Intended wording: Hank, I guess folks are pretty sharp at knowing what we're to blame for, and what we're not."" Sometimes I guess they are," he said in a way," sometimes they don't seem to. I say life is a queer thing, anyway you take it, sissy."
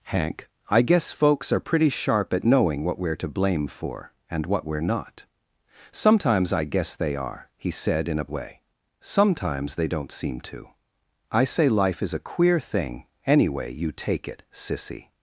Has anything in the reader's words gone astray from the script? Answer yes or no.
no